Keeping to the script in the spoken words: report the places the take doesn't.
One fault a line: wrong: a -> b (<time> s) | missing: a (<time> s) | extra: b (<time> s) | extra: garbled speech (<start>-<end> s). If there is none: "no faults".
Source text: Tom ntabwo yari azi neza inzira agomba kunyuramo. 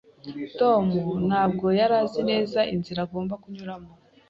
no faults